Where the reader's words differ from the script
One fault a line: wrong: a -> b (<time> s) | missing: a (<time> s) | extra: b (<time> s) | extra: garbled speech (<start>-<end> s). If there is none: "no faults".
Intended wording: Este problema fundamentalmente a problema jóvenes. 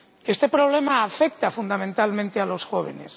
extra: afecta (1.0 s)
wrong: problema -> los (2.5 s)